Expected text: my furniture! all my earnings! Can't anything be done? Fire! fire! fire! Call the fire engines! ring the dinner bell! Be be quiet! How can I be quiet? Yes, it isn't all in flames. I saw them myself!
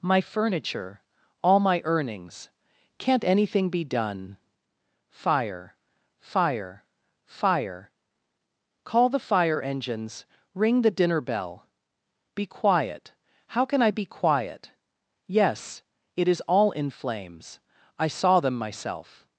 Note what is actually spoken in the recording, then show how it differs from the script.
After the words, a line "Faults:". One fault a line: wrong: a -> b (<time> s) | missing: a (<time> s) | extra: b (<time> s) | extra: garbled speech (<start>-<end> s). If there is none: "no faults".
my furniture! all my earnings! Can't anything be done? Fire! fire! fire! Call the fire engines! ring the dinner bell! Be quiet! How can I be quiet? Yes, it is all in flames. I saw them myself!
Faults:
missing: be (12.4 s)
wrong: isn't -> is (16.3 s)